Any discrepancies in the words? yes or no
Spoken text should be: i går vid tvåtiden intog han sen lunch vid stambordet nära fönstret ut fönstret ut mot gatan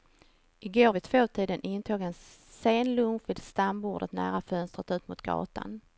yes